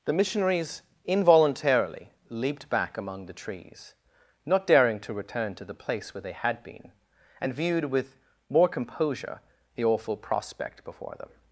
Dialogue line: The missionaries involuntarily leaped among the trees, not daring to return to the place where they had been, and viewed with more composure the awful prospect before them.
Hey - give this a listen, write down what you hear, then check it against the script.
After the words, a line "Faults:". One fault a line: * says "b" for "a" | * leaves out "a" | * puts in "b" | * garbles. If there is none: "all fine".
The missionaries involuntarily leaped back among the trees, not daring to return to the place where they had been, and viewed with more composure the awful prospect before them.
Faults:
* puts in "back"